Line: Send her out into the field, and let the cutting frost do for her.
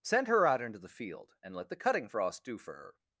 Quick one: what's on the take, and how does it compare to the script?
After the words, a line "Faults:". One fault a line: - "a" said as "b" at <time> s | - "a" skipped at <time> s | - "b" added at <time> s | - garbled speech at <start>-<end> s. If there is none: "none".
Send her out into the field, and let the cutting frost do for her.
Faults:
none